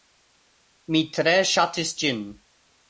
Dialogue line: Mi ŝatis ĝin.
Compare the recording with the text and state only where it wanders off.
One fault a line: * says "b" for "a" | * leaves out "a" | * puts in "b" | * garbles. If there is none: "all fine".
* puts in "tre"